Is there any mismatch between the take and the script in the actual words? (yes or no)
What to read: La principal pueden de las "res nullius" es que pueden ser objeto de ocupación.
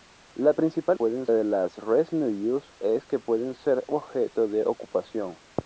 no